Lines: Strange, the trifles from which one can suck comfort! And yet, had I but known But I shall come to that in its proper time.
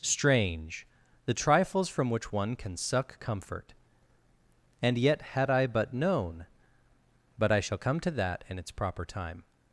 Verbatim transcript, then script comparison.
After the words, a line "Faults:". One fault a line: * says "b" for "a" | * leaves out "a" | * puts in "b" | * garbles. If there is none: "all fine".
Strange, the trifles from which one can suck comfort! And yet, had I but known But I shall come to that in its proper time.
Faults:
all fine